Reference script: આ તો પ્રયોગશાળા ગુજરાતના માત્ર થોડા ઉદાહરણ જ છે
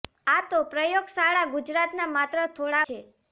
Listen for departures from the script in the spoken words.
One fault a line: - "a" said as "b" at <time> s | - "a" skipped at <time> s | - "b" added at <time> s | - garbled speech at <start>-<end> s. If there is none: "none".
- "ઉદાહરણ જ" skipped at 2.8 s